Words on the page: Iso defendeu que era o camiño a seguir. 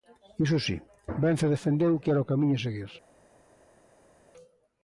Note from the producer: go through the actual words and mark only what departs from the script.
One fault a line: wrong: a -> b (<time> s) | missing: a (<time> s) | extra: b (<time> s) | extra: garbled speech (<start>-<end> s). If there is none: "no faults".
extra: si Vence (0.7 s)